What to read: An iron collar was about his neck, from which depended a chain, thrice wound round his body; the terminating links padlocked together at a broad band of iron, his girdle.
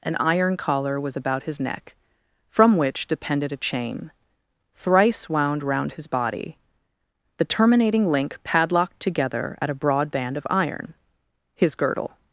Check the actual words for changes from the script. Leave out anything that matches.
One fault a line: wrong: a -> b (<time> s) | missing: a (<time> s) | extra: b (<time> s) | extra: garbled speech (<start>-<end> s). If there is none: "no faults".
wrong: links -> link (8.1 s)